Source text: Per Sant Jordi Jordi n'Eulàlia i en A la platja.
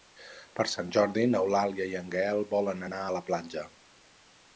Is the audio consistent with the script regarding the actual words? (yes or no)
no